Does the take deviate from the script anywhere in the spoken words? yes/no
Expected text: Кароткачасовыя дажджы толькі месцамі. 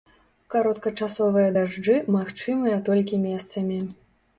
yes